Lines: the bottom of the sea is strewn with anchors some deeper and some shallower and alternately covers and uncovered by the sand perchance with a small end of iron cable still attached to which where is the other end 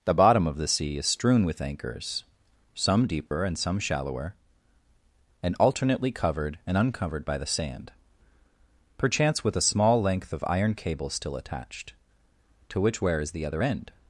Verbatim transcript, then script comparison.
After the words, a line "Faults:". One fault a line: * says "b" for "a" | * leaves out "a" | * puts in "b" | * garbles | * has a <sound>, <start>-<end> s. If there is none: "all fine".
the bottom of the sea is strewn with anchors some deeper and some shallower and alternately covered and uncovered by the sand perchance with a small length of iron cable still attached to which where is the other end
Faults:
* has a dropout, 3.3-3.3 s
* says "covered" for "covers"
* says "length" for "end"